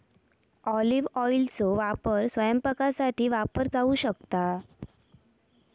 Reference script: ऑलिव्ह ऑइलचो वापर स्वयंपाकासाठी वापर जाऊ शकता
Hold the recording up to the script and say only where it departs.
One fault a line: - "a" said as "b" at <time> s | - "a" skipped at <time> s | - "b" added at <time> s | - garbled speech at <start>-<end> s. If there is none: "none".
none